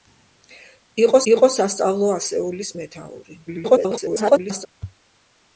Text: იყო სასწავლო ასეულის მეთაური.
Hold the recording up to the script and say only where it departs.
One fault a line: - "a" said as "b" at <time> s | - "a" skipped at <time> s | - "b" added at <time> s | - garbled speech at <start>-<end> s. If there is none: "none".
- "იყო" added at 1.3 s
- garbled speech at 3.5-4.7 s